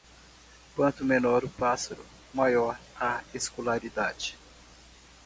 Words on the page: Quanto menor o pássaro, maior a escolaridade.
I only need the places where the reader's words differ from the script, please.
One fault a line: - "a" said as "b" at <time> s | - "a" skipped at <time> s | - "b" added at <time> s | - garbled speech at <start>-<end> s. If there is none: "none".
none